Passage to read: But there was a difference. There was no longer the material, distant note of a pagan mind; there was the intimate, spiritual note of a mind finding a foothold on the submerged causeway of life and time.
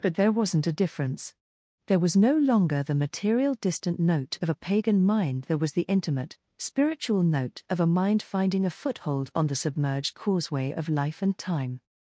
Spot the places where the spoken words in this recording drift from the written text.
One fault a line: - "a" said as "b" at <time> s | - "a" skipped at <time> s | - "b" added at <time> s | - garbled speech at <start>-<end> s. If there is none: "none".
- "was" said as "wasn't" at 0.3 s